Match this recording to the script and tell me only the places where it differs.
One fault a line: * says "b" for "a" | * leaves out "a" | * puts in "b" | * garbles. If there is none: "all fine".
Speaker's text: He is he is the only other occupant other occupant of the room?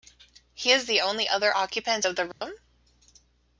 * leaves out "he is"
* leaves out "other occupant"